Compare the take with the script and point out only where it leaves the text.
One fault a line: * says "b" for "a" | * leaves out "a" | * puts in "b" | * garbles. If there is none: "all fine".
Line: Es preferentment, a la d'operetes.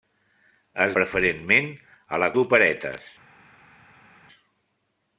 all fine